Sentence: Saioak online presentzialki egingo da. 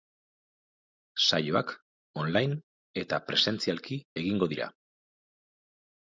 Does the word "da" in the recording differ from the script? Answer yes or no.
yes